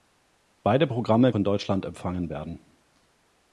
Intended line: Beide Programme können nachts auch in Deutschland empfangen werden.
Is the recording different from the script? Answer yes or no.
yes